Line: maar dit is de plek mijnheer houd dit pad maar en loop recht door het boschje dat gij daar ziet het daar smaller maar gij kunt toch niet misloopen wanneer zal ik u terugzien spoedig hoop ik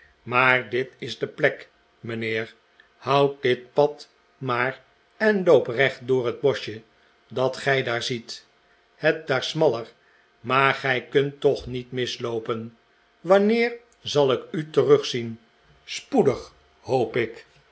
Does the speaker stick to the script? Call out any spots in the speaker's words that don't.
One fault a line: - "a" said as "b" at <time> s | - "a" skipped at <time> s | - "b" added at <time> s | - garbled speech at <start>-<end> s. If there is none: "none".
none